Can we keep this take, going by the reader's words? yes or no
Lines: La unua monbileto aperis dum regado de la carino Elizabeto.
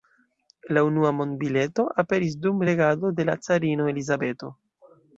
yes